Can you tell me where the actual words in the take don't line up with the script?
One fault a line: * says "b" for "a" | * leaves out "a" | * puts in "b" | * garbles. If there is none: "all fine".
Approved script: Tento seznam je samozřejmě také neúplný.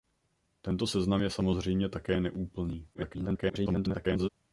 * garbles